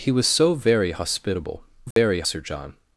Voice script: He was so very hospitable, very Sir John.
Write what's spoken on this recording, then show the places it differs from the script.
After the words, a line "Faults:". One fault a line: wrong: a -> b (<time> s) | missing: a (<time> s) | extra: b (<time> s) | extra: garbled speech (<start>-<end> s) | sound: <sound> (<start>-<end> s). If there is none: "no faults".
He was so very hospitable, very Sir John.
Faults:
sound: dropout (1.9-2.0 s)